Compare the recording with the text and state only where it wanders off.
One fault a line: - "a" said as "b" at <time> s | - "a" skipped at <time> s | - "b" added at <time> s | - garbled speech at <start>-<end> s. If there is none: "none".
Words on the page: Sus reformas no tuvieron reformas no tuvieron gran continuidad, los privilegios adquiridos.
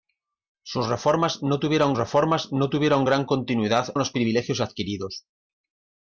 none